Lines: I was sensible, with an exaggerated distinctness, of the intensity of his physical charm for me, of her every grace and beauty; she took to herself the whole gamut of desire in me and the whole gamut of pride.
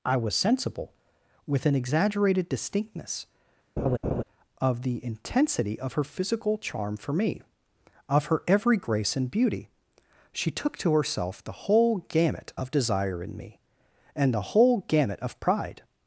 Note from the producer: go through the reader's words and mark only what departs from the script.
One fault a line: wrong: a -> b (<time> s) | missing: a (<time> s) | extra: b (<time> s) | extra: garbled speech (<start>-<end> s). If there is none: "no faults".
wrong: his -> her (5.9 s)